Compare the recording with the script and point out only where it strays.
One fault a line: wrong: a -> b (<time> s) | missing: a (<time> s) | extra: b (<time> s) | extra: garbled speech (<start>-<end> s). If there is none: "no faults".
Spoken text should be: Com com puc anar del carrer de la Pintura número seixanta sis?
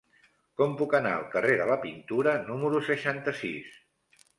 missing: com (0.7 s)
wrong: del -> al (1.2 s)